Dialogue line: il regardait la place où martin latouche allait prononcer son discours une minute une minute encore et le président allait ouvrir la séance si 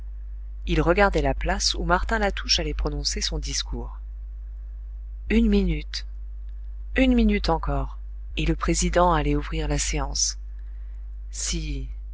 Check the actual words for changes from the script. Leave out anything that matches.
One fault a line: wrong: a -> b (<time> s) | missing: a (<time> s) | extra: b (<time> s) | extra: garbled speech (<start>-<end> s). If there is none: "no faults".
no faults